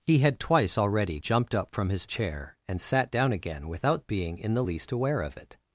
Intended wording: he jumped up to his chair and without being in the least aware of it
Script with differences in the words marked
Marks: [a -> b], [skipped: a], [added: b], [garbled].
he [added: had twice already] jumped up [to -> from] his chair and [added: sat down again] without being in the least aware of it